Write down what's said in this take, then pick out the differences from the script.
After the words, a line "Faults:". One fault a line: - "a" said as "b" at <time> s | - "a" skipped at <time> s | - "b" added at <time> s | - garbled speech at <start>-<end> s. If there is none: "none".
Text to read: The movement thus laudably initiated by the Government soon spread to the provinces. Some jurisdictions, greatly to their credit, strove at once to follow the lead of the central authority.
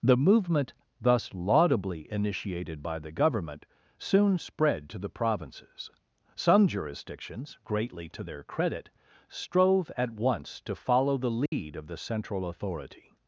The movement thus laudably initiated by the Government soon spread to the provinces. Some jurisdictions, greatly to their credit, strove at once to follow the lead of the central authority.
Faults:
none